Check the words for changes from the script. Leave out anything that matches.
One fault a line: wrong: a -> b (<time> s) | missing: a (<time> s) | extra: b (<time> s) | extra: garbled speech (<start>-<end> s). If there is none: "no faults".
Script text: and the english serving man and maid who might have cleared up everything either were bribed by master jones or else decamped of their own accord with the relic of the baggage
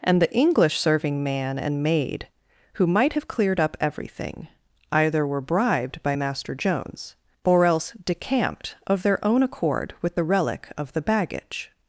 no faults